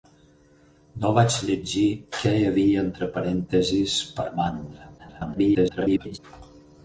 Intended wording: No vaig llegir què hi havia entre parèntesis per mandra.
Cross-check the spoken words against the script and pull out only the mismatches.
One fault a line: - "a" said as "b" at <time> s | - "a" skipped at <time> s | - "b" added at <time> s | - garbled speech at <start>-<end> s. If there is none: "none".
- garbled speech at 5.0-6.2 s